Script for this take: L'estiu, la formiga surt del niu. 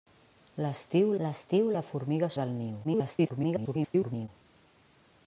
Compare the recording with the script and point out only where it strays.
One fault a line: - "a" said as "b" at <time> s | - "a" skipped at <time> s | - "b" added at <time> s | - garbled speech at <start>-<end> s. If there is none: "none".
- "l'estiu" added at 1.2 s
- "surt" skipped at 2.3 s
- garbled speech at 2.8-4.3 s